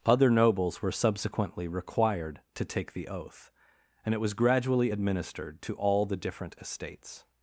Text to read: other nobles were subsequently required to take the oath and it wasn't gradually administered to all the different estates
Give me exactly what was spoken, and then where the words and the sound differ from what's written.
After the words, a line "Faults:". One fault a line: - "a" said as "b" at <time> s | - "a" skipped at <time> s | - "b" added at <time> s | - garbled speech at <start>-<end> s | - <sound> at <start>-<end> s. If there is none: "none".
other nobles were subsequently required to take the oath and it was gradually administered to all the different estates
Faults:
- "wasn't" said as "was" at 4.2 s